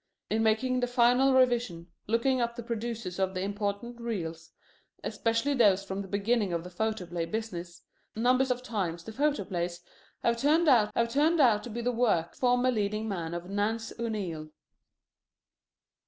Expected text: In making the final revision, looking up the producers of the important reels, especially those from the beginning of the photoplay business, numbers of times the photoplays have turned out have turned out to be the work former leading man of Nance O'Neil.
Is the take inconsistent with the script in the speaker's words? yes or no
no